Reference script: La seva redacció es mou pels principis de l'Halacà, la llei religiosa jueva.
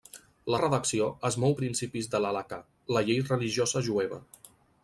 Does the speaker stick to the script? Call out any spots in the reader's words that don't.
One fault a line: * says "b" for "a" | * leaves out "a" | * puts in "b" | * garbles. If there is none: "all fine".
* leaves out "seva"
* leaves out "pels"